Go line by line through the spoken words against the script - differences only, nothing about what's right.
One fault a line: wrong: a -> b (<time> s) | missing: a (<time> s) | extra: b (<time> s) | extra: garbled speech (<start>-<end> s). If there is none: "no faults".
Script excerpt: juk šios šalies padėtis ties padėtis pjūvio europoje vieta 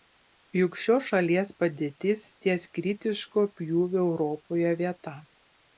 wrong: padėtis -> kritiško (2.8 s)